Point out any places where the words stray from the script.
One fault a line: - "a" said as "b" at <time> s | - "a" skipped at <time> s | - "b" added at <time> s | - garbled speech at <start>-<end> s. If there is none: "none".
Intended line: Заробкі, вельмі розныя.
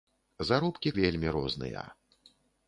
none